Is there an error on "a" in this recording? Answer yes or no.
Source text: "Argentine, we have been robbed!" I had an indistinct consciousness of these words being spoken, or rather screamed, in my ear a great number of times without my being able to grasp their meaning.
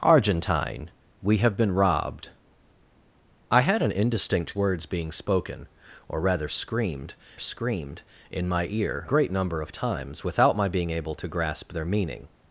yes